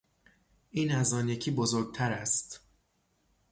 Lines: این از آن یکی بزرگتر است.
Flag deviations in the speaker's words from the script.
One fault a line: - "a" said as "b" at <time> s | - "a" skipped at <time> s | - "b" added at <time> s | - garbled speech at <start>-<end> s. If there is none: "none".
none